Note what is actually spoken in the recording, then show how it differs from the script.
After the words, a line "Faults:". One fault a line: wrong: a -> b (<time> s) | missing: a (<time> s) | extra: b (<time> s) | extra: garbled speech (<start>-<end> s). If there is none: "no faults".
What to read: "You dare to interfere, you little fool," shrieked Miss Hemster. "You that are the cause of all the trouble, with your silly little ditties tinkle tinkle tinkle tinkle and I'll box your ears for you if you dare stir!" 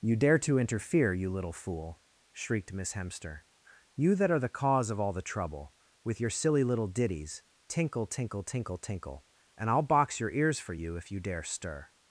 "You dare to interfere, you little fool," shrieked Miss Hemster. "You that are the cause of all the trouble, with your silly little ditties tinkle tinkle tinkle tinkle and I'll box your ears for you if you dare stir!"
Faults:
no faults